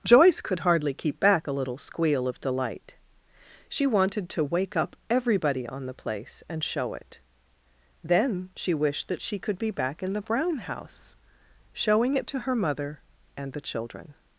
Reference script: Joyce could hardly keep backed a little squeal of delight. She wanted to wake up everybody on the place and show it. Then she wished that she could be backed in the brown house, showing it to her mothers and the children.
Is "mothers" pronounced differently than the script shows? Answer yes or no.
yes